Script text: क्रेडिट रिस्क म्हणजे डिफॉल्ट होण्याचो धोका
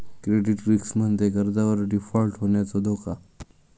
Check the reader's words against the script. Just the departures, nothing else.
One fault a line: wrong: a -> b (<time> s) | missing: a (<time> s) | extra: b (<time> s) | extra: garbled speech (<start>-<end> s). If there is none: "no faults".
extra: कर्जावर (1.3 s)